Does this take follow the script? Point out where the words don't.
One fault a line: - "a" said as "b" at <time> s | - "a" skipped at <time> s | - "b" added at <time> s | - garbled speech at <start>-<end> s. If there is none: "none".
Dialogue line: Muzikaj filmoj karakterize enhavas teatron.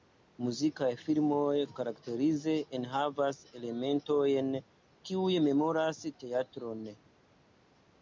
- "elementojn kiuj memoras" added at 3.6 s